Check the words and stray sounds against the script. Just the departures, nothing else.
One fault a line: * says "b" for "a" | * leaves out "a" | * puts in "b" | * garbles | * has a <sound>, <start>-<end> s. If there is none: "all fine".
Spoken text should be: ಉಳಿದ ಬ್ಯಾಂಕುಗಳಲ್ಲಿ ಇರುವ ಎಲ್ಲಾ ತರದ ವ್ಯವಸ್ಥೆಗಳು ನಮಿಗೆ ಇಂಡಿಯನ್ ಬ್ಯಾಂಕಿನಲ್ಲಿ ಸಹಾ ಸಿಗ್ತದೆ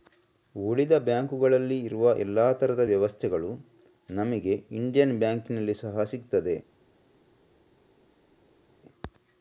all fine